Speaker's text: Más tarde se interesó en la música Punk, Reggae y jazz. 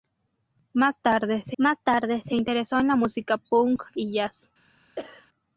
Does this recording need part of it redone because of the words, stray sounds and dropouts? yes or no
yes